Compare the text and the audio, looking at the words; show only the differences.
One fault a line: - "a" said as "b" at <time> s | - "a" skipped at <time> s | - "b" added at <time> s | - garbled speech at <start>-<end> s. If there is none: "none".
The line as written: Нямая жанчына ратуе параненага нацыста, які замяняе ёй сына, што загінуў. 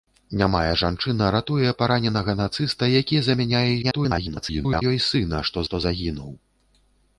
- garbled speech at 3.8-4.8 s
- "што" added at 5.7 s